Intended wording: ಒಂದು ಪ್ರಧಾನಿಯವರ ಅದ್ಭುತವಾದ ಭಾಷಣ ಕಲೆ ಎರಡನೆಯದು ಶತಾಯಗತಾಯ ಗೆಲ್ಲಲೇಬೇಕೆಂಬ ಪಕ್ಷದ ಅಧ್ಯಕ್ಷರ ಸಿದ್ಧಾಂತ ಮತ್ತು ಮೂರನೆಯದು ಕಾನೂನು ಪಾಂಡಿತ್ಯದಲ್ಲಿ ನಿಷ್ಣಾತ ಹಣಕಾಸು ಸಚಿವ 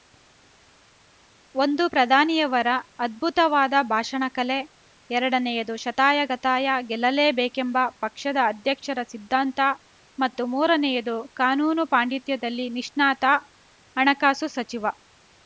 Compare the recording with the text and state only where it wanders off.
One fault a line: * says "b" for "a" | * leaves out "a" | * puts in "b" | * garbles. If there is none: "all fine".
all fine